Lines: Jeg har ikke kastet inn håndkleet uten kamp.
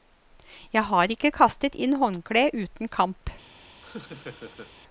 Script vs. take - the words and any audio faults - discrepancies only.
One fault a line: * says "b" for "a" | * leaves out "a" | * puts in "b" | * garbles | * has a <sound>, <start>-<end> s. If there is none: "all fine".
* has a laugh, 3.8-4.7 s